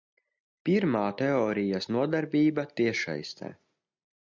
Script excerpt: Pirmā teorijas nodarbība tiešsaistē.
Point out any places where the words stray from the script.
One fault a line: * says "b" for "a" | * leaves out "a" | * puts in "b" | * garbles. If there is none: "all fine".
all fine